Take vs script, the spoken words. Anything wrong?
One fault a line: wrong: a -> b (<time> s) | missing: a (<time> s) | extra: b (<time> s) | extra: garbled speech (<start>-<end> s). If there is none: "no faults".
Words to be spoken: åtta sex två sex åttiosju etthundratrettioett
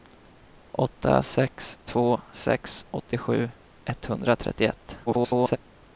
extra: garbled speech (5.1-5.6 s)